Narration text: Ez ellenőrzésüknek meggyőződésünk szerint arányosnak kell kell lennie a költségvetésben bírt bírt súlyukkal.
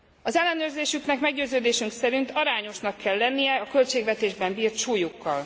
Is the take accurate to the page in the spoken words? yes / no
no